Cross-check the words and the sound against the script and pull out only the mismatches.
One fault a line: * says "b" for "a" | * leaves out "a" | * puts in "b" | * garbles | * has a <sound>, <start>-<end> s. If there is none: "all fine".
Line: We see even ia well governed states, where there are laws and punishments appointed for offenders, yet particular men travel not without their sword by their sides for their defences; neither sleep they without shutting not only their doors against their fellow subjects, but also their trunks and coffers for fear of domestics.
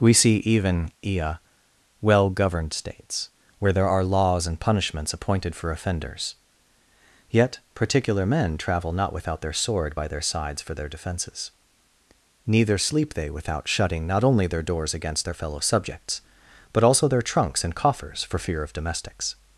all fine